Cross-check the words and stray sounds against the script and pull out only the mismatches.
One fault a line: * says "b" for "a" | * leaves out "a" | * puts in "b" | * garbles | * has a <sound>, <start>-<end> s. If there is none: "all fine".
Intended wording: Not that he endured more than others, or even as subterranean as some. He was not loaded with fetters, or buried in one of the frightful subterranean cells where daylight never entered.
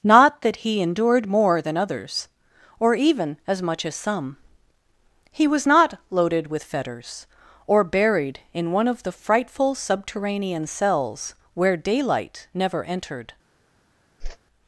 * says "much" for "subterranean"
* has a whoosh, 14.2-14.4 s